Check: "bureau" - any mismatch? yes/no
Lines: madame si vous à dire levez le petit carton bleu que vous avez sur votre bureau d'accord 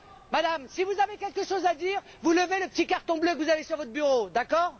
no